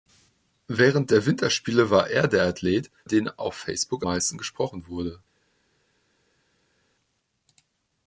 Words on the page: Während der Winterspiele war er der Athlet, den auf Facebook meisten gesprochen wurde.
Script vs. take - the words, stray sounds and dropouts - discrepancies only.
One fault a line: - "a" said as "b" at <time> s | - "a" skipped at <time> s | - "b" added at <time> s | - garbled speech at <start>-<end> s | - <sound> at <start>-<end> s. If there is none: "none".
none